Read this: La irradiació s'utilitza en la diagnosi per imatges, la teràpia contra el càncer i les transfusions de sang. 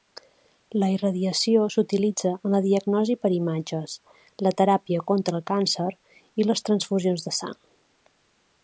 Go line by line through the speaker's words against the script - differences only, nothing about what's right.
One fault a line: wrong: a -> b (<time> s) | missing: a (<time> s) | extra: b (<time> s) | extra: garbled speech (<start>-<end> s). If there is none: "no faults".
no faults